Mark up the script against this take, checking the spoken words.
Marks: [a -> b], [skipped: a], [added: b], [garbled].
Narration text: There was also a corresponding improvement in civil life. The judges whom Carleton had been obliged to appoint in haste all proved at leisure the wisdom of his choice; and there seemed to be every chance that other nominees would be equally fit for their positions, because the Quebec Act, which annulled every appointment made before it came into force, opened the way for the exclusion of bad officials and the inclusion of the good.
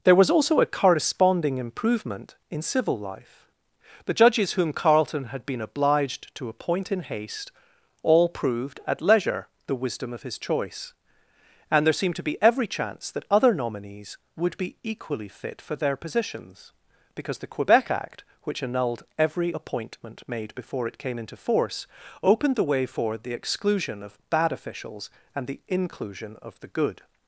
There was also a corresponding improvement in civil life. The judges whom Carleton had been obliged to appoint in haste all proved at leisure the wisdom of his choice; and there seemed to be every chance that other nominees would be equally fit for their positions, because the Quebec Act, which annulled every appointment made before it came into force, opened the way for the exclusion of bad officials and the inclusion of the good.